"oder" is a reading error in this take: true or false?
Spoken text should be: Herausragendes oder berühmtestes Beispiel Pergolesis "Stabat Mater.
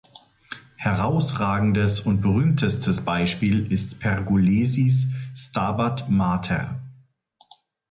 true